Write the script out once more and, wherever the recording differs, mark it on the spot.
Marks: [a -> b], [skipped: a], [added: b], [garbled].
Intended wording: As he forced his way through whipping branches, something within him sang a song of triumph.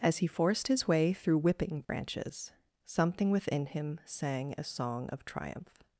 As he forced his way through whipping branches, something within him sang a song of triumph.